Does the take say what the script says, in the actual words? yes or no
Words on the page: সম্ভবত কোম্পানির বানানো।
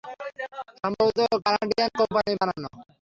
no